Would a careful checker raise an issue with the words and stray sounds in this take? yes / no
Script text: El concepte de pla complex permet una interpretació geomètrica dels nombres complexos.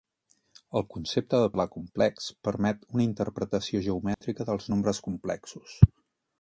yes